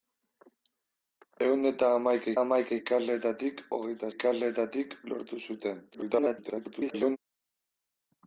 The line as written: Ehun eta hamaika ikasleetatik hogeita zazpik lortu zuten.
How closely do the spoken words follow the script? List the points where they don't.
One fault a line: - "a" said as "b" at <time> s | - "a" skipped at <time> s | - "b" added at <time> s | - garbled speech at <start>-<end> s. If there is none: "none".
- "hamaika" added at 2.4 s
- "zazpik" said as "ikasleetatik" at 4.1 s
- garbled speech at 5.9-7.2 s